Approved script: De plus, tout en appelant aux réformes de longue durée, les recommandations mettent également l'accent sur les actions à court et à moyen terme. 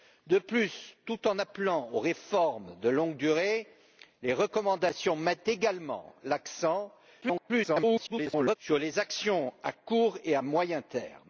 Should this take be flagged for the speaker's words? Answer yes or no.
yes